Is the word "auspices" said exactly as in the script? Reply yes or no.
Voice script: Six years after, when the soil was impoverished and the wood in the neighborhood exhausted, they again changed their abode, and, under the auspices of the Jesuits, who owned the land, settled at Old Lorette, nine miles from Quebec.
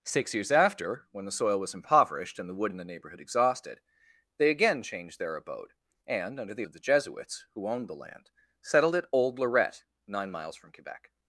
no